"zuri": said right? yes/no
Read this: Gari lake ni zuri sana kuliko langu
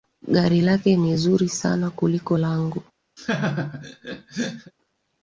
yes